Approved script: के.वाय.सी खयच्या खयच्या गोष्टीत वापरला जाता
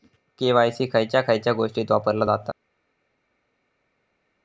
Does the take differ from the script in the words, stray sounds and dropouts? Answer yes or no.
no